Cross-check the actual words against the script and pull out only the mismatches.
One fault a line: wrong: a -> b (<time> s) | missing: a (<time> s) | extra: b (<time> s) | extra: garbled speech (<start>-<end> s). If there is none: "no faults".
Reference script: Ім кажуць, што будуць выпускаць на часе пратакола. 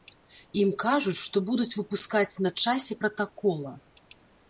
no faults